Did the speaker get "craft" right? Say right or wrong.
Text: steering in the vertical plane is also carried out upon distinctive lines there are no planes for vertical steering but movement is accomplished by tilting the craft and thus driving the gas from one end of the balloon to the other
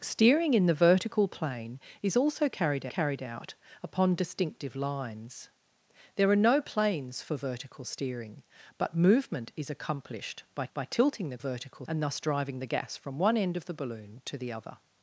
wrong